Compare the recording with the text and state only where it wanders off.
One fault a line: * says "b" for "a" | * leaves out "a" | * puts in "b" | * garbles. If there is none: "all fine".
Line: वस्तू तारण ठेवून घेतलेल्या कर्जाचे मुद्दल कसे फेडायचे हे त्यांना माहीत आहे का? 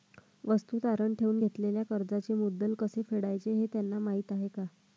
all fine